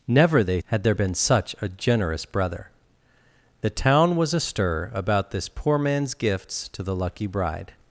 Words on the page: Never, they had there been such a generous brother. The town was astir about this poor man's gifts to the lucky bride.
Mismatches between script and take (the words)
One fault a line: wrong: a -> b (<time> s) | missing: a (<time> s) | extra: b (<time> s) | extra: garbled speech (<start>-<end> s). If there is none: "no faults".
no faults